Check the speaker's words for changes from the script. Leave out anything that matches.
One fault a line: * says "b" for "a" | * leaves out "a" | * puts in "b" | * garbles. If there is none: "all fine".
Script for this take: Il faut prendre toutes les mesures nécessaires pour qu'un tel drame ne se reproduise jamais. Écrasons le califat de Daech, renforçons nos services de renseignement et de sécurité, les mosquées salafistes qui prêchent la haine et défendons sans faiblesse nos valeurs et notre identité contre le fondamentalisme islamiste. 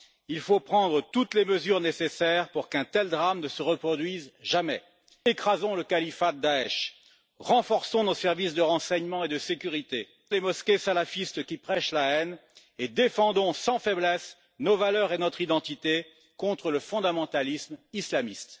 all fine